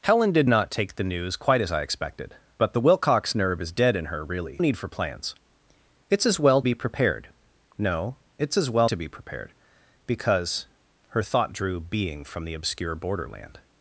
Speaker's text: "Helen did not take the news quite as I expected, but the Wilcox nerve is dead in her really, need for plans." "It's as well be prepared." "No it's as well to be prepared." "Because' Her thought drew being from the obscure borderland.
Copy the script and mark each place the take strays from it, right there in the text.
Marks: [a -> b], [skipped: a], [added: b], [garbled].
"Helen did not take the news quite as I expected, but the Wilcox nerve is dead in her really, need for plans." "It's as well be prepared." "No it's as well to be prepared." "Because' Her thought drew being from the obscure borderland.